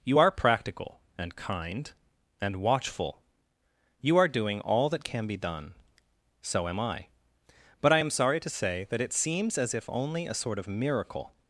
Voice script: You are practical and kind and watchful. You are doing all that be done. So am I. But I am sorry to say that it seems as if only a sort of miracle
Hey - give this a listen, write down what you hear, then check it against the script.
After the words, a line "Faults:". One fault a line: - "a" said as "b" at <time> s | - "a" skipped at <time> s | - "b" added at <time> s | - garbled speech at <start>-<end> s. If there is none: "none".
You are practical and kind and watchful. You are doing all that can be done. So am I. But I am sorry to say that it seems as if only a sort of miracle
Faults:
- "can" added at 5.0 s